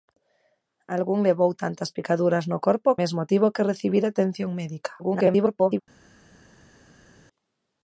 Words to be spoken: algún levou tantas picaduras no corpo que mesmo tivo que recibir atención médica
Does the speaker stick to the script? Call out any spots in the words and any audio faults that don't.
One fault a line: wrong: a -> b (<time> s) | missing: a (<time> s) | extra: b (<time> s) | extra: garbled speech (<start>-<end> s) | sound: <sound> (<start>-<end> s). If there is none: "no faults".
missing: que (3.0 s)
extra: garbled speech (5.0-5.8 s)